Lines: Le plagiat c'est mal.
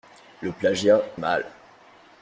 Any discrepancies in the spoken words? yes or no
yes